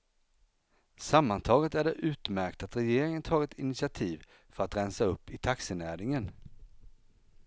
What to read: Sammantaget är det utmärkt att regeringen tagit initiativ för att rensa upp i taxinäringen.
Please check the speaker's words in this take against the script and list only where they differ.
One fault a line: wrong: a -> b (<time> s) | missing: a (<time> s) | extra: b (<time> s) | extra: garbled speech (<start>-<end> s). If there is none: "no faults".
no faults